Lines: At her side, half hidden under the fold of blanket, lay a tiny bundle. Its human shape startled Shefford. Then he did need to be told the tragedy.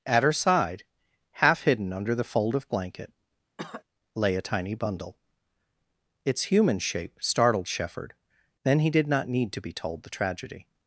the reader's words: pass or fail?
fail